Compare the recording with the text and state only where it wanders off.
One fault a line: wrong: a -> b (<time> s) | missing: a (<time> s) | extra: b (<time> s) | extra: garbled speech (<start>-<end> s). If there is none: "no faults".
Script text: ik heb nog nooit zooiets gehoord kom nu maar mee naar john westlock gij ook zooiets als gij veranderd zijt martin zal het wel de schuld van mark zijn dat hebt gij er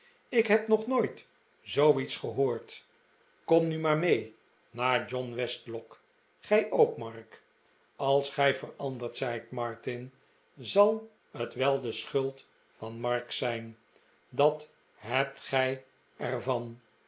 wrong: zooiets -> mark (7.0 s)